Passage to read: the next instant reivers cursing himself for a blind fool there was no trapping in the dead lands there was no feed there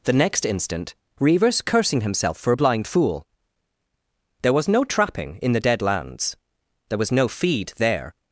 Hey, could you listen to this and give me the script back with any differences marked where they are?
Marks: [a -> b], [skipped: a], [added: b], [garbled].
the next instant reivers cursing himself for a blind fool there was no trapping in the dead lands there was no feed there